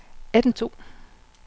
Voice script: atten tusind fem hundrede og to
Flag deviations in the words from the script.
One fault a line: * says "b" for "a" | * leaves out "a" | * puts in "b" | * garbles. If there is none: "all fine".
* leaves out "tusind fem hundrede"